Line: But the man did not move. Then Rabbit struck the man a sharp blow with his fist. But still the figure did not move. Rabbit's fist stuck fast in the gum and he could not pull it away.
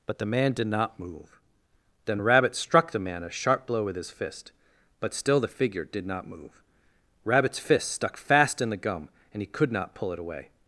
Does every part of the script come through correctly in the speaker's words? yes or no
yes